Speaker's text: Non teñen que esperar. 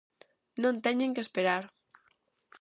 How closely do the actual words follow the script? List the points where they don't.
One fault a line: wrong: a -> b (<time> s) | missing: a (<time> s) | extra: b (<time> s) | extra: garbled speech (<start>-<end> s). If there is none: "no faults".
no faults